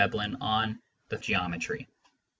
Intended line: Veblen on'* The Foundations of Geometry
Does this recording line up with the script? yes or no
no